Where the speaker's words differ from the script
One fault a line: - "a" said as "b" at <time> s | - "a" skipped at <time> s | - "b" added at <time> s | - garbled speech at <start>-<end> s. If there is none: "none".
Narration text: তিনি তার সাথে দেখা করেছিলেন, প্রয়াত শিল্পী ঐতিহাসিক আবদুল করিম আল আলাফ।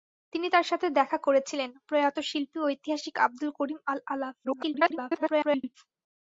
- garbled speech at 4.4-5.7 s